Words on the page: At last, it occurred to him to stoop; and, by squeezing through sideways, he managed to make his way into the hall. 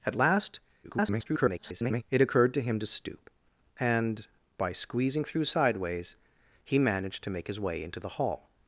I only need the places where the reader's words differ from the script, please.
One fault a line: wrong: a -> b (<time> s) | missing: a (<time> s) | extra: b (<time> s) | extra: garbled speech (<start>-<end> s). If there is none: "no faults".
extra: garbled speech (0.8-2.0 s)